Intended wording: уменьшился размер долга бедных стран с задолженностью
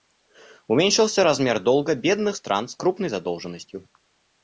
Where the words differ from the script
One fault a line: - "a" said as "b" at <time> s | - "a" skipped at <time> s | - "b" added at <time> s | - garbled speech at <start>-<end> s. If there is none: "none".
- "крупной" added at 2.7 s